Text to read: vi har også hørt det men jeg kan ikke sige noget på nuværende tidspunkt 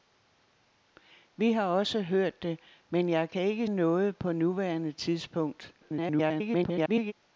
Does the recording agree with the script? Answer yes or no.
no